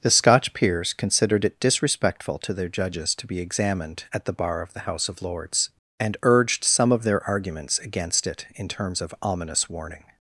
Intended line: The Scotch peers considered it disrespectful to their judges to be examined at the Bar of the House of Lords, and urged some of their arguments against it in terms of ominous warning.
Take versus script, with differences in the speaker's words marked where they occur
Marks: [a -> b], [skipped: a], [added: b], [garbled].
The Scotch peers considered it disrespectful to their judges to be examined at the Bar of the House of Lords, and urged some of their arguments against it in terms of ominous warning.